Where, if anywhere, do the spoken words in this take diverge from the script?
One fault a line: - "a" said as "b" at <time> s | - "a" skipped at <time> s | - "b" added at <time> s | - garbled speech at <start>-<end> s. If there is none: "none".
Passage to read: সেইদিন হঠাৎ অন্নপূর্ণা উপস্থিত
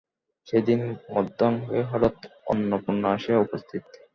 - "মধ্যাহ্নে" added at 1.1 s
- "আসিয়া" added at 3.2 s